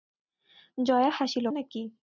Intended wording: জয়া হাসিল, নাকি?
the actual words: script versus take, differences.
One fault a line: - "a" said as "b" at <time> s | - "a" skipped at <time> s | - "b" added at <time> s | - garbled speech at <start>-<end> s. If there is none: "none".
none